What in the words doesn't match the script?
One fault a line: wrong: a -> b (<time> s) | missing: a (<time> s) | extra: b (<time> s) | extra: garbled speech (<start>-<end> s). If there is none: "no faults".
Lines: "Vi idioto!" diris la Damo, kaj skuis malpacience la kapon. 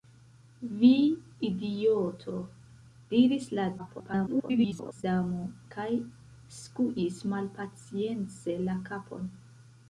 extra: garbled speech (3.8-5.0 s)